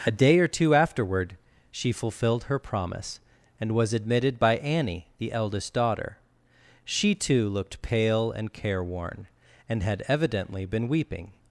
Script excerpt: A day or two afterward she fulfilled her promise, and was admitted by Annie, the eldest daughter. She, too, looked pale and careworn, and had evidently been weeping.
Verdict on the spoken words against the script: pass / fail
pass